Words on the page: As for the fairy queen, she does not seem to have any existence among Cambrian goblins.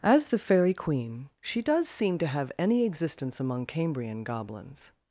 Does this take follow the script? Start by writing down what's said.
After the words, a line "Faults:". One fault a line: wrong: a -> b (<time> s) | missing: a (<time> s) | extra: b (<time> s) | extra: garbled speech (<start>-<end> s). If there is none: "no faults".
As the fairy queen, she does seem to have any existence among Cambrian goblins.
Faults:
missing: for (0.3 s)
missing: not (1.9 s)